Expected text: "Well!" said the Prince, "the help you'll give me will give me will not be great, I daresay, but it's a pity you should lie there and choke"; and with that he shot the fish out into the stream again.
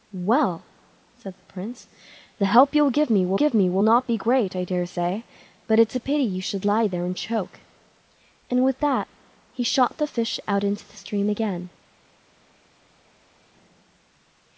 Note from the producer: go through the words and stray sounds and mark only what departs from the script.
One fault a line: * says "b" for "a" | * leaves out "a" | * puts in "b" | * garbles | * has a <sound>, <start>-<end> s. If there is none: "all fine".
all fine